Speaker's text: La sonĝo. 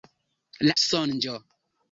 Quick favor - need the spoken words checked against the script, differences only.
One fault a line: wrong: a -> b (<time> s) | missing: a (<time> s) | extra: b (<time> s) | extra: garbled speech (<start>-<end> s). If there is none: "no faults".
no faults